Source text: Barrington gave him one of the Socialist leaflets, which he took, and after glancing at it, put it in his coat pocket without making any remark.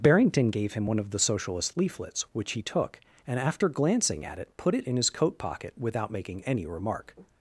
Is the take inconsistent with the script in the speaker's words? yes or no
no